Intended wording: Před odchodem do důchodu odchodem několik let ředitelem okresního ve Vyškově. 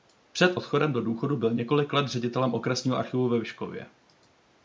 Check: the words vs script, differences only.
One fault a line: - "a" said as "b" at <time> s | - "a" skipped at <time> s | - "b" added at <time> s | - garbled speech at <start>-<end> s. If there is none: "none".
- "odchodem" said as "byl" at 1.4 s
- "archivu" added at 3.0 s